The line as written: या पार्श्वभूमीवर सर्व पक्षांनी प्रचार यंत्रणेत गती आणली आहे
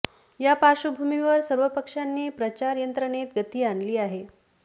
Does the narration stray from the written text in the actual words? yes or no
no